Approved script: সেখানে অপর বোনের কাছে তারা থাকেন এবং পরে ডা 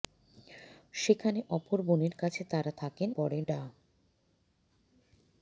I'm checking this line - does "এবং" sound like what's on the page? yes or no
no